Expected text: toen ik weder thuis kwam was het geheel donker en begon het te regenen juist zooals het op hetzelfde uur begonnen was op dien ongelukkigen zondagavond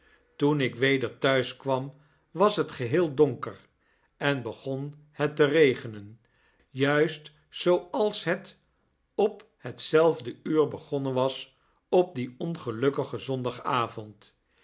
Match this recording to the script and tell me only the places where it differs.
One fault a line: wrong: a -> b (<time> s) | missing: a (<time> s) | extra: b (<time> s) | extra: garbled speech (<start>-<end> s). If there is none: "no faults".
no faults